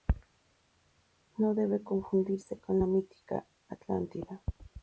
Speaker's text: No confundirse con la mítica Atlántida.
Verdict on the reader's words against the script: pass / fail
fail